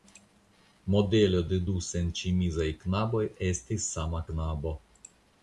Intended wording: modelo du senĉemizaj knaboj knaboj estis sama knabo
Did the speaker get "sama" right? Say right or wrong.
right